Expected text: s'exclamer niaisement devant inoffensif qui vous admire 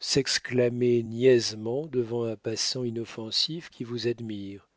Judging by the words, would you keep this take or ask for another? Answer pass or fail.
fail